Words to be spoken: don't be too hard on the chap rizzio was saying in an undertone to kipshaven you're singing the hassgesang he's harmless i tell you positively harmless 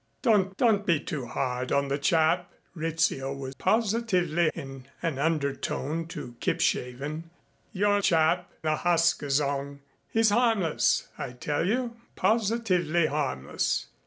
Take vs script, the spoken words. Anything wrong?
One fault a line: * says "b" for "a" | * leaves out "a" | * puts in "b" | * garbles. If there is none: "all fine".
* puts in "don't"
* says "positively" for "saying"
* says "chap" for "singing"